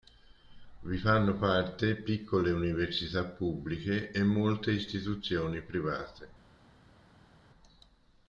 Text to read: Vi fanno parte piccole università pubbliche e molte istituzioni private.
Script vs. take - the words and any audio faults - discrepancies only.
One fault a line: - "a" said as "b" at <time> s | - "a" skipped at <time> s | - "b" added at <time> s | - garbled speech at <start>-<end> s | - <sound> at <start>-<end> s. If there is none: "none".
none